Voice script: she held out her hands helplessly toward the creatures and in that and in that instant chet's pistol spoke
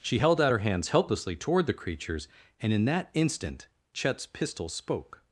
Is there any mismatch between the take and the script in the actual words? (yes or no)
yes